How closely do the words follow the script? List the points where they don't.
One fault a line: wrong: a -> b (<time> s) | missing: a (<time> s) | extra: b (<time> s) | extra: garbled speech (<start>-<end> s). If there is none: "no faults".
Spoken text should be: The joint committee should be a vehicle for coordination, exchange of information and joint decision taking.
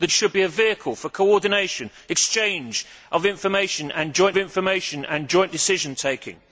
missing: joint committee (0.1 s)
extra: information and joint (4.4 s)